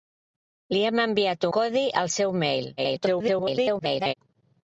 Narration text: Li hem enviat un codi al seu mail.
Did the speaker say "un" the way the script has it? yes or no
no